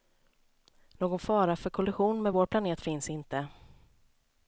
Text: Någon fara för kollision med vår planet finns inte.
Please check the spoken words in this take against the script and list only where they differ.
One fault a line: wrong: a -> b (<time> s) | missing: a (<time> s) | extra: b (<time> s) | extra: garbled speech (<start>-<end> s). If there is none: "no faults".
no faults